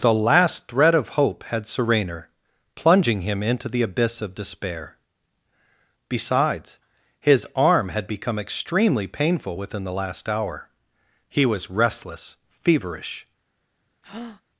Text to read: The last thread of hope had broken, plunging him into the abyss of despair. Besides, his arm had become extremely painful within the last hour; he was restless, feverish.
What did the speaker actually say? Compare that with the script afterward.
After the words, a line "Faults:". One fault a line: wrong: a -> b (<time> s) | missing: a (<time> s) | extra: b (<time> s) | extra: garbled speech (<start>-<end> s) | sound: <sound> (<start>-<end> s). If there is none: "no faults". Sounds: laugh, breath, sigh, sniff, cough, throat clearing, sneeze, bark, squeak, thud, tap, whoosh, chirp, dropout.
The last thread of hope had serener, plunging him into the abyss of despair. Besides, his arm had become extremely painful within the last hour; he was restless, feverish.
Faults:
wrong: broken -> serener (1.7 s)
sound: breath (14.0-14.4 s)